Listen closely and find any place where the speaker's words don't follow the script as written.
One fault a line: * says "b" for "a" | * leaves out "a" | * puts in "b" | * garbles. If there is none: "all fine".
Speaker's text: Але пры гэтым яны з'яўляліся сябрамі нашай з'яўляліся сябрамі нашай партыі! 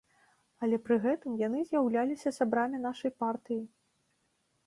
* leaves out "з'яўляліся сябрамі нашай"